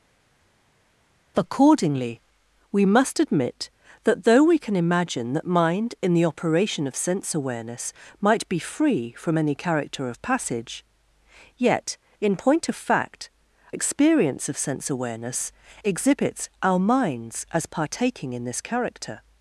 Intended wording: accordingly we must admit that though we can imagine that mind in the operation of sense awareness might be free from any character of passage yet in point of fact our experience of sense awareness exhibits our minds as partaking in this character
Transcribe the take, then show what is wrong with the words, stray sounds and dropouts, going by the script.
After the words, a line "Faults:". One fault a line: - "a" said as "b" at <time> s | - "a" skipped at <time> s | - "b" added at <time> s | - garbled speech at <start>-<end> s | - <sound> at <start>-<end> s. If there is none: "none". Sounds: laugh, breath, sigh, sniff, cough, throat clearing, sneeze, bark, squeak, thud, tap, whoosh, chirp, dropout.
accordingly we must admit that though we can imagine that mind in the operation of sense awareness might be free from any character of passage yet in point of fact experience of sense awareness exhibits our minds as partaking in this character
Faults:
- "our" skipped at 13.3 s